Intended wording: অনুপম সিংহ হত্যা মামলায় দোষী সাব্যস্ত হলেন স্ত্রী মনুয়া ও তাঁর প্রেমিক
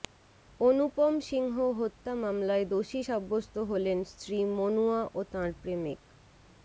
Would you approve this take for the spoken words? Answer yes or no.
yes